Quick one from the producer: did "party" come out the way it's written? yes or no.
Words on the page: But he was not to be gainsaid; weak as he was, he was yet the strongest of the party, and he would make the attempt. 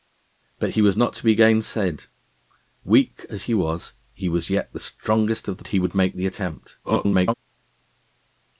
no